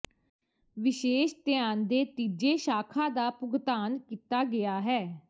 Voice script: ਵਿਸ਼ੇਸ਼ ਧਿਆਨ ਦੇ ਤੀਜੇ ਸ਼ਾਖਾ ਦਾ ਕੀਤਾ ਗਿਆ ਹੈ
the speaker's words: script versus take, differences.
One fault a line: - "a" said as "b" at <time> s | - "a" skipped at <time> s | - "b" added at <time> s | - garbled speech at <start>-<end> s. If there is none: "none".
- "ਭੁਗਤਾਨ" added at 3.3 s